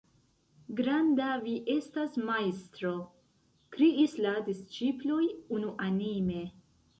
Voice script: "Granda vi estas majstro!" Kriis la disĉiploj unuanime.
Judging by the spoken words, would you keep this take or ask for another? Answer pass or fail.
pass